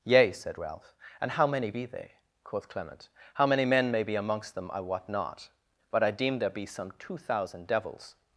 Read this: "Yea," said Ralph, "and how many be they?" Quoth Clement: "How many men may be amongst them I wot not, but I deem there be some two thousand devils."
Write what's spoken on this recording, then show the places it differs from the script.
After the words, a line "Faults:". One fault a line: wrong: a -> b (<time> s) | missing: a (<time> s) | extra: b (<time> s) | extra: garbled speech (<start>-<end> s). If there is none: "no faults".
"Yea," said Ralph, "and how many be they?" Quoth Clement: "How many men may be amongst them I wot not, but I deem there be some two thousand devils."
Faults:
no faults